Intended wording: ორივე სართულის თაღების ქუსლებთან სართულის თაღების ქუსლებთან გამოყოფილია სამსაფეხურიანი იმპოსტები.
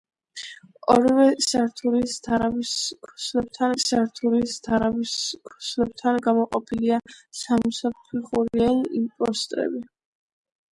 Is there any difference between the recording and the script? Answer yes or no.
no